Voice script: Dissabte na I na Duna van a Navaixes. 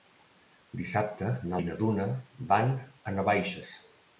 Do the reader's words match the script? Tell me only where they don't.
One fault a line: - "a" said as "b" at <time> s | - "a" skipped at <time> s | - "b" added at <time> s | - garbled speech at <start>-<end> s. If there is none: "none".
none